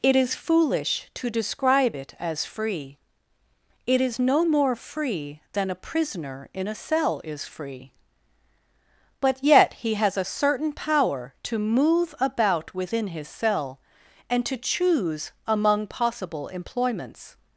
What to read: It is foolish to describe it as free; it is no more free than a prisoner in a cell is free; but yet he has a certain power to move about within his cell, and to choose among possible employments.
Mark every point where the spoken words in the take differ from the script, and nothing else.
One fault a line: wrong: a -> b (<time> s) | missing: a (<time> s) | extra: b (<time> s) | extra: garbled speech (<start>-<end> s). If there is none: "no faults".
no faults